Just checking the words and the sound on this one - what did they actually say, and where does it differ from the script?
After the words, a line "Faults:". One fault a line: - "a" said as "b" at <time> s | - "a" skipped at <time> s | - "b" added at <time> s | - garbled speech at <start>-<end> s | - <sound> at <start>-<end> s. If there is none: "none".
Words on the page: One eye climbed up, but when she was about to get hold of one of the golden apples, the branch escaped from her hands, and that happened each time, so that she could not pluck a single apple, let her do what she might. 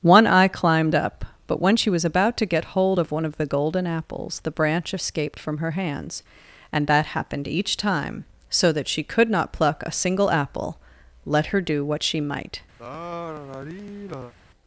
One eye climbed up, but when she was about to get hold of one of the golden apples, the branch escaped from her hands, and that happened each time, so that she could not pluck a single apple, let her do what she might.
Faults:
- sigh at 12.8-14.3 s